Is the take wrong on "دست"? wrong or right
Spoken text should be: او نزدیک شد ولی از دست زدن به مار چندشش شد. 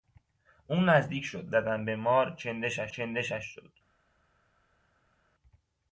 wrong